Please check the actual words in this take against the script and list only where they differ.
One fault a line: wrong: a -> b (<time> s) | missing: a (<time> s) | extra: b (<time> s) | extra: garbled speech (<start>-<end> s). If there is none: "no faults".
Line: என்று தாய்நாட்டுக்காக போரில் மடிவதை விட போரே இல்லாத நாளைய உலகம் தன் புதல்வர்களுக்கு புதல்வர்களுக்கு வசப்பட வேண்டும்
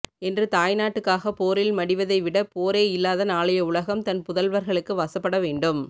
missing: புதல்வர்களுக்கு (5.0 s)